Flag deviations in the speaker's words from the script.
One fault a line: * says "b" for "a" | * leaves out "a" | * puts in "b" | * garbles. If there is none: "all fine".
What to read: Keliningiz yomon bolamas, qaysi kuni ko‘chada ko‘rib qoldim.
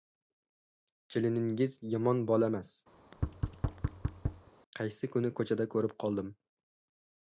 all fine